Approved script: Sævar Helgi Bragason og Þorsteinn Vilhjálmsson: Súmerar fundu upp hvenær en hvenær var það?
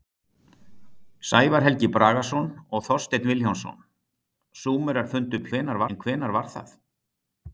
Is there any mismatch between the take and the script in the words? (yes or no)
no